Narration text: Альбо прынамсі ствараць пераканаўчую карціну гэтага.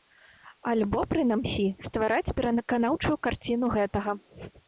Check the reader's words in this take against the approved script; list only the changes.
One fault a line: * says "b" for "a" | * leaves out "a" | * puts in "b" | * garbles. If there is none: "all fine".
all fine